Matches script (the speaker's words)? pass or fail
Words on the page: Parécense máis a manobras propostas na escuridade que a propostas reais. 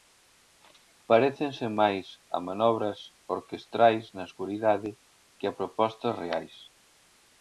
fail